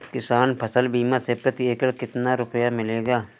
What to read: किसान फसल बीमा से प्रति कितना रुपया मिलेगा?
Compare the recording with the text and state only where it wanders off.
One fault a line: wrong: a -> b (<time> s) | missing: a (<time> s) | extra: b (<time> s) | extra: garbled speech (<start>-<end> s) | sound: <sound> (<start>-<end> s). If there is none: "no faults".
extra: एकड़ (1.7 s)